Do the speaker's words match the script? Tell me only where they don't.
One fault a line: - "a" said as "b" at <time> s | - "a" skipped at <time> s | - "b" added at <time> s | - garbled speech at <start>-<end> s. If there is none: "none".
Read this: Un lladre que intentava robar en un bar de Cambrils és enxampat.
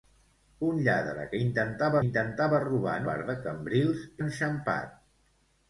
- "intentava" added at 2.1 s
- "un" skipped at 3.1 s
- "és" skipped at 4.1 s